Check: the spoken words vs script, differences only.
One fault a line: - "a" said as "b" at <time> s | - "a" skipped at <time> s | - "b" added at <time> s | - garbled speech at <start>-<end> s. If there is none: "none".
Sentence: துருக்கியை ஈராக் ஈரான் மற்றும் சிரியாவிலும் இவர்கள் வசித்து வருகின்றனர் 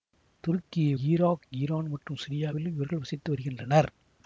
none